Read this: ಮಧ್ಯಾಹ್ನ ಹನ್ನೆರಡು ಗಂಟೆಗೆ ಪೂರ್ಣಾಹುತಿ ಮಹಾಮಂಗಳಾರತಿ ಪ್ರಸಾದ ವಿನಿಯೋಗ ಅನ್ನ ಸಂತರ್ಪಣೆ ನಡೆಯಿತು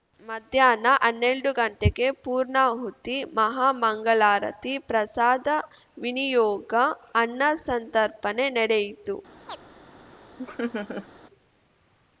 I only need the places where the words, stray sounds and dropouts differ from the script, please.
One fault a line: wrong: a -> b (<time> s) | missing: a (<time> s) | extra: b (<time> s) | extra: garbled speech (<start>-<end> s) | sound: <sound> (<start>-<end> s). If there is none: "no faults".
sound: chirp (9.5-9.6 s)
sound: laugh (10.4-11.1 s)